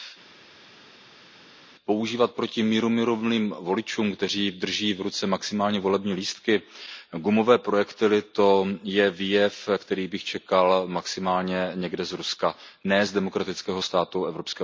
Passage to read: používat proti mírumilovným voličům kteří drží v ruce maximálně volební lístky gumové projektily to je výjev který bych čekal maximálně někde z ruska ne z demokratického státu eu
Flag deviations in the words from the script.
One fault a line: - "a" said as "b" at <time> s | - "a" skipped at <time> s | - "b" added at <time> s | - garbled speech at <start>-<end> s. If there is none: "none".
none